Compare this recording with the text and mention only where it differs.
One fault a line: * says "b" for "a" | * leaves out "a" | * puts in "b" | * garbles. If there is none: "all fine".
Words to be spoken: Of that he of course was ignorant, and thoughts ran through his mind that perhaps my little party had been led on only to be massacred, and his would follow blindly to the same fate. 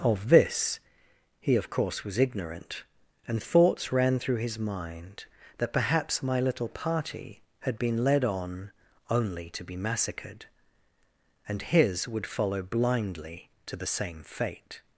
* says "this" for "that"